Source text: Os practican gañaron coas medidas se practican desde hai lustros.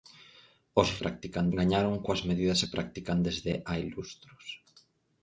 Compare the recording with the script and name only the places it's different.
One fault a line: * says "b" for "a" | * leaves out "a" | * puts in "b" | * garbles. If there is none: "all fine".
all fine